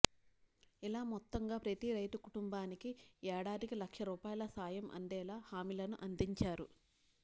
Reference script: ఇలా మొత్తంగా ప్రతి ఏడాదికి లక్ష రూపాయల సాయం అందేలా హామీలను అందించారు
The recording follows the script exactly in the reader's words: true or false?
false